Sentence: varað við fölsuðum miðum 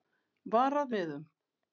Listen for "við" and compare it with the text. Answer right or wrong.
wrong